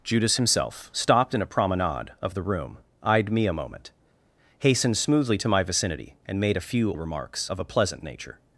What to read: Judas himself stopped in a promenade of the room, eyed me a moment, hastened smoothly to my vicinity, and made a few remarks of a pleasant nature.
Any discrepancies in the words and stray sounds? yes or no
no